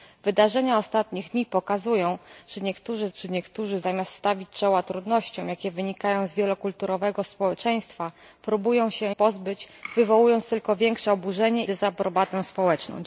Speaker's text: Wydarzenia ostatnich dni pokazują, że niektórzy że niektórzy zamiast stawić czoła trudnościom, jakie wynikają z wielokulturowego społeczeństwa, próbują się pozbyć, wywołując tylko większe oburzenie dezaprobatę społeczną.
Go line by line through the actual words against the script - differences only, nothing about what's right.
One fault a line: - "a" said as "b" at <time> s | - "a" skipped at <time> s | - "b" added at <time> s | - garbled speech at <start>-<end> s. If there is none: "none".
none